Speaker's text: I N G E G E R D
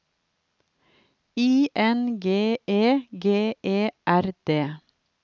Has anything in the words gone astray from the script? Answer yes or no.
no